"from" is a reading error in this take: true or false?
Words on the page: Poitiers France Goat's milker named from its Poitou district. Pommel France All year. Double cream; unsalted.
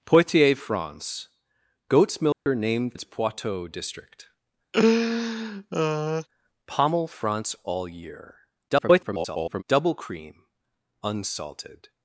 true